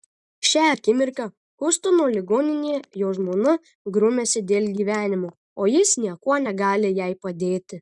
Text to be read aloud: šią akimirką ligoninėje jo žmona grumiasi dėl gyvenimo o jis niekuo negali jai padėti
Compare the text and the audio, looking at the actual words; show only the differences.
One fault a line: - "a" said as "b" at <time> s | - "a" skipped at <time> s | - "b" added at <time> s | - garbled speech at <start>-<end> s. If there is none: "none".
- "hjustono" added at 1.6 s